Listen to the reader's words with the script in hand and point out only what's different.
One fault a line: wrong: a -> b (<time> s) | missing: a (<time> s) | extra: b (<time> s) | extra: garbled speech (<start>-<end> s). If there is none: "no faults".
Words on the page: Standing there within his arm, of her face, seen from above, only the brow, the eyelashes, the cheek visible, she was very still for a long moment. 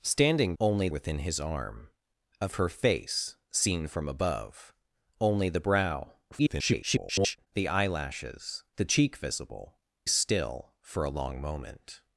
wrong: there -> only (0.6 s)
extra: garbled speech (6.3-7.5 s)
missing: she was very (9.8 s)